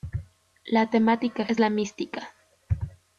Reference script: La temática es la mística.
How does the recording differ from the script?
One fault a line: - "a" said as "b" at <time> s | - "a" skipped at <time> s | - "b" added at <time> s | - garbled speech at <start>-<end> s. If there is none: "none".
none